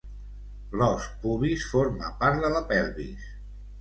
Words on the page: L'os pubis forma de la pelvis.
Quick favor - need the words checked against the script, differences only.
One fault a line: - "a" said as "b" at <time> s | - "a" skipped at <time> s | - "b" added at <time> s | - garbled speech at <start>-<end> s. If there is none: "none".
- "part" added at 2.2 s